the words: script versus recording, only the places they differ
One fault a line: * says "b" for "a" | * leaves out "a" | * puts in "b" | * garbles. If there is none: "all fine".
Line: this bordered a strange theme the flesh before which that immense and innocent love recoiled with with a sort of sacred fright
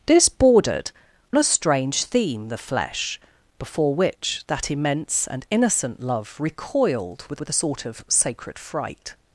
all fine